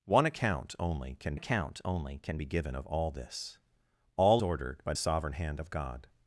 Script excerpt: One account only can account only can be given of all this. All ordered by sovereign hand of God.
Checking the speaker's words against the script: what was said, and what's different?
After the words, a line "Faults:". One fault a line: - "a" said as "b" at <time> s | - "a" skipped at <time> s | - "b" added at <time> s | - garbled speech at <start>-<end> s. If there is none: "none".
One account only can account only can be given of all this. All ordered by sovereign hand of God.
Faults:
none